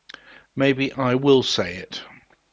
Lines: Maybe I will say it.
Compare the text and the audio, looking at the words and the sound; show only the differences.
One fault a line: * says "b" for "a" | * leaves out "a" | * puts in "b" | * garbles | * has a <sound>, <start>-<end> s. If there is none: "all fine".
all fine